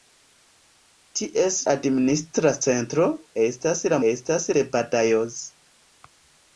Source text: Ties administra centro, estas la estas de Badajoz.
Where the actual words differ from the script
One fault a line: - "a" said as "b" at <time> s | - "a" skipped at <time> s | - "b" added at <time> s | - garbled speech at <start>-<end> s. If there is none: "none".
none